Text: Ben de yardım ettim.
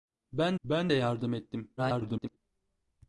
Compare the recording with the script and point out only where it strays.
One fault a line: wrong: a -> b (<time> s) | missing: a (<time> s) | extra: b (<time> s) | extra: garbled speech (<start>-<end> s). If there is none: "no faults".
extra: ben (0.6 s)
extra: garbled speech (1.8-2.4 s)